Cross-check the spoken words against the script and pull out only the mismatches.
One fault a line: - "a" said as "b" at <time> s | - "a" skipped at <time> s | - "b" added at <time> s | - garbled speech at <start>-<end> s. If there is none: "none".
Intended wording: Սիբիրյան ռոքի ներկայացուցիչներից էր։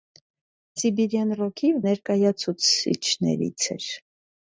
none